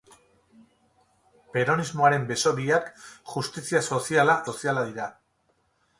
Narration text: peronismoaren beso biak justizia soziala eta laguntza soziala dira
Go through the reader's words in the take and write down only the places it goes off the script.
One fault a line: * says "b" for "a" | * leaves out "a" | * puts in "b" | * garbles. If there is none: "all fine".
* leaves out "eta laguntza"